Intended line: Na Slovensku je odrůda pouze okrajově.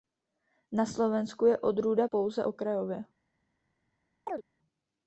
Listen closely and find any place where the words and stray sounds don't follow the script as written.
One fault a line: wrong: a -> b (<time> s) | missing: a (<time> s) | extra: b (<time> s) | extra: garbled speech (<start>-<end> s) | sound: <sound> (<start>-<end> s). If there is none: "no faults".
sound: chirp (4.3-4.4 s)